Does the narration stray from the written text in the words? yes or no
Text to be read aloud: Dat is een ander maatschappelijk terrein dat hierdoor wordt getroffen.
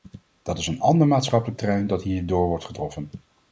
no